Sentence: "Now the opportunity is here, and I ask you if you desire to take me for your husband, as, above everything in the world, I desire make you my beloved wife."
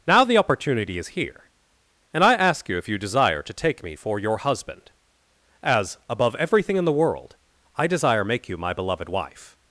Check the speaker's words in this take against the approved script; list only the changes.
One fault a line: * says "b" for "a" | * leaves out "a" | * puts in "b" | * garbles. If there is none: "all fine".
all fine